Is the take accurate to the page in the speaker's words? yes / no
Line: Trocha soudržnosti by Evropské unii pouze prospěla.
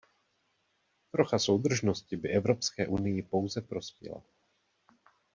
yes